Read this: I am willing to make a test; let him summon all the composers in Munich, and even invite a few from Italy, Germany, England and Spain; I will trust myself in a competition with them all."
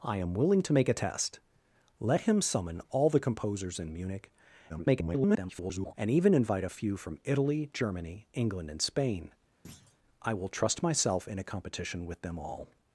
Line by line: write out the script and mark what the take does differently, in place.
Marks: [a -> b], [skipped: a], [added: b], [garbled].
I am willing to make a test; let him summon all the composers in Munich, [garbled] and even invite a few from Italy, Germany, England and Spain; I will trust myself in a competition with them all."